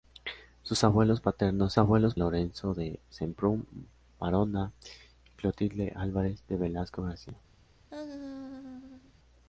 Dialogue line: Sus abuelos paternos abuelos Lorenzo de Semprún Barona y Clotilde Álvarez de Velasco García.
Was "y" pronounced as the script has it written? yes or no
yes